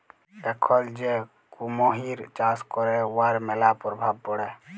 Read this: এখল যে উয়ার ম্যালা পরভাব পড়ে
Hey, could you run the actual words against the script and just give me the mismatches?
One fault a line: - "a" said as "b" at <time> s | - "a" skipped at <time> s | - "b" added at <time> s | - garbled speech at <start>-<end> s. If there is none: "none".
- "কুমহির চাষ ক্যরে" added at 1.5 s